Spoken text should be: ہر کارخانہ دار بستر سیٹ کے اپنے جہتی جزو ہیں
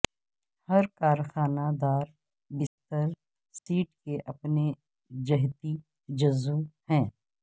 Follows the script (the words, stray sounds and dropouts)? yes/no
no